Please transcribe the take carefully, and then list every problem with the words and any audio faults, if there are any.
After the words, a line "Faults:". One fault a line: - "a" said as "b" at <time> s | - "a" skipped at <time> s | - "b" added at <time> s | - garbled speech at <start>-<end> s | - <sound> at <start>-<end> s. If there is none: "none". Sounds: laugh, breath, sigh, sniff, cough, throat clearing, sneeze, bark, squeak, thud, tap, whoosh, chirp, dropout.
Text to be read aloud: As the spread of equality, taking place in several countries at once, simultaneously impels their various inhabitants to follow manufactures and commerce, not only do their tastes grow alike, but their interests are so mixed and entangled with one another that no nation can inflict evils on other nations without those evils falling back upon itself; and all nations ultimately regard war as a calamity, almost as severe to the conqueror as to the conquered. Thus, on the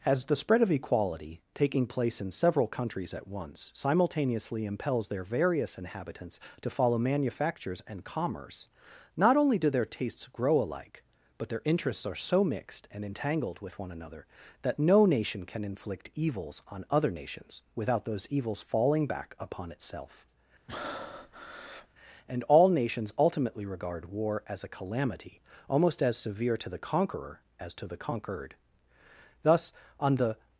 As the spread of equality, taking place in several countries at once, simultaneously impels their various inhabitants to follow manufactures and commerce, not only do their tastes grow alike, but their interests are so mixed and entangled with one another that no nation can inflict evils on other nations without those evils falling back upon itself; and all nations ultimately regard war as a calamity, almost as severe to the conqueror as to the conquered. Thus, on the
Faults:
- breath at 20.7-21.9 s